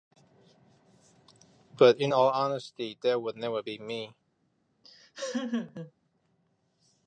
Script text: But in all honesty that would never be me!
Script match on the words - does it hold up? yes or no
yes